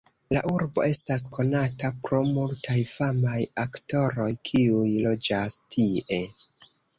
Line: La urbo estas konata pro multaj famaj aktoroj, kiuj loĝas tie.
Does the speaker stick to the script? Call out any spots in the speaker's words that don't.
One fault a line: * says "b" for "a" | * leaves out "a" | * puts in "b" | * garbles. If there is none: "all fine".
all fine